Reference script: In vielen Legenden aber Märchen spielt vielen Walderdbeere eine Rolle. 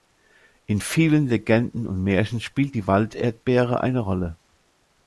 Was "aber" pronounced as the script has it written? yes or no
no